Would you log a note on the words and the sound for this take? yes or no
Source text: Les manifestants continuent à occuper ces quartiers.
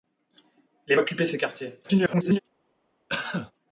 yes